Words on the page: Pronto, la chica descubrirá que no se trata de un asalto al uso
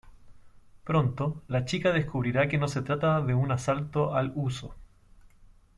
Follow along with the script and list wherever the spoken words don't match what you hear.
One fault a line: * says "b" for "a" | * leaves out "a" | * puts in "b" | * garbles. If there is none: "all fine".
all fine